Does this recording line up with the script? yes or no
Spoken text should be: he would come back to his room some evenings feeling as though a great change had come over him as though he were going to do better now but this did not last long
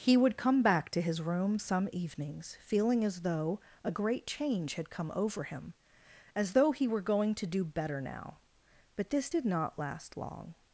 yes